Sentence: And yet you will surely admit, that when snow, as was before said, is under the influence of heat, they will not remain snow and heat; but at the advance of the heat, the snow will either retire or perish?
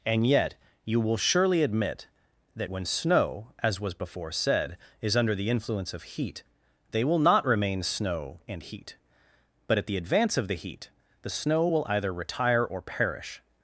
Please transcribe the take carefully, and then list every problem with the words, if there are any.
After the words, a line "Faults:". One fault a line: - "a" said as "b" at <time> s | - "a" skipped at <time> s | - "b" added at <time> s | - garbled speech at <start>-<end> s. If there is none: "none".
And yet you will surely admit, that when snow, as was before said, is under the influence of heat, they will not remain snow and heat; but at the advance of the heat, the snow will either retire or perish?
Faults:
none